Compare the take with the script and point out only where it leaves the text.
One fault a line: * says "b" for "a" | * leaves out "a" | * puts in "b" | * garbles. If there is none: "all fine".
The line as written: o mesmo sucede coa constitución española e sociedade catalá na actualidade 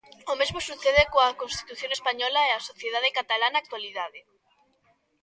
* puts in "a"